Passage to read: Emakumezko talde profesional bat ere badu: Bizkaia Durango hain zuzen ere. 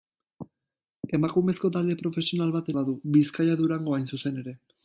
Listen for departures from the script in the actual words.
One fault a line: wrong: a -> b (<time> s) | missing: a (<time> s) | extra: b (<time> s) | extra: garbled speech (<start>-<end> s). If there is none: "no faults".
missing: ere (2.7 s)